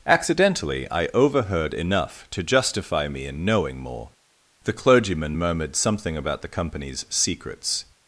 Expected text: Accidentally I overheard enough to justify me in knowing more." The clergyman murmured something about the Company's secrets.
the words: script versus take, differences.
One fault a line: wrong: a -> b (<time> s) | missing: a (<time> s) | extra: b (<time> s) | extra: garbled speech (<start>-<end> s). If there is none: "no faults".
no faults